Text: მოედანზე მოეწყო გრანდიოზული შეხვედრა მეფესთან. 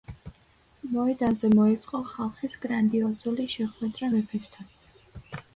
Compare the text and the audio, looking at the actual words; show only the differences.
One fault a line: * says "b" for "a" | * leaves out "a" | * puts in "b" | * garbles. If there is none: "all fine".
* puts in "ხალხის"